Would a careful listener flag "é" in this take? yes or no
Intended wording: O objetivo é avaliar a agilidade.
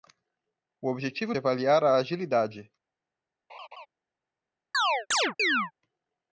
no